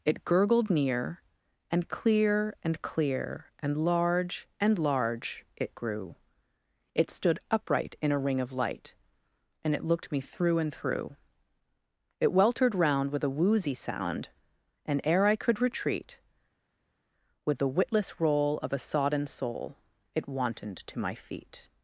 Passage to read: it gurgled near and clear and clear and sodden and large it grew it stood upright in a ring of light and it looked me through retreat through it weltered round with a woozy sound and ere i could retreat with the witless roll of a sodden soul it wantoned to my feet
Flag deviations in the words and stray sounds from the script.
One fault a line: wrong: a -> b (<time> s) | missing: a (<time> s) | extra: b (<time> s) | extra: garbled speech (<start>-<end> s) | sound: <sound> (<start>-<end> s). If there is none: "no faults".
wrong: sodden -> large (3.8 s)
wrong: retreat -> and (10.6 s)